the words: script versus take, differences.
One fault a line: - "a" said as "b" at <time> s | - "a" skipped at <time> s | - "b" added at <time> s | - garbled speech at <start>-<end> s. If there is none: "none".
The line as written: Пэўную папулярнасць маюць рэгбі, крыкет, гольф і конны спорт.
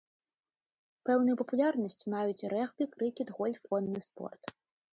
- "і" skipped at 3.6 s